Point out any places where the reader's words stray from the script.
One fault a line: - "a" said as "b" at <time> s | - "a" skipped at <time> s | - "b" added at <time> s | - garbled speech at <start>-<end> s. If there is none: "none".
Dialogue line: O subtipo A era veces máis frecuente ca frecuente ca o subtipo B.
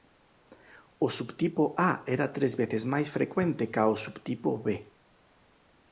- "tres" added at 2.4 s
- "frecuente ca" skipped at 3.8 s